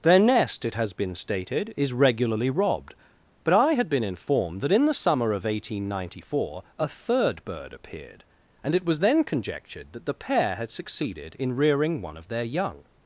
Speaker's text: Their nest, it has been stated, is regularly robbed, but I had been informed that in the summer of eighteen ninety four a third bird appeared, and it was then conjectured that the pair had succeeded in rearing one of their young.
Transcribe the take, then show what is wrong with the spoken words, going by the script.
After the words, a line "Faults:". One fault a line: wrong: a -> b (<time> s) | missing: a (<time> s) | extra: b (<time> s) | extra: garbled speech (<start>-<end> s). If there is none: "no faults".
Their nest, it has been stated, is regularly robbed, but I had been informed that in the summer of eighteen ninety four a third bird appeared, and it was then conjectured that the pair had succeeded in rearing one of their young.
Faults:
no faults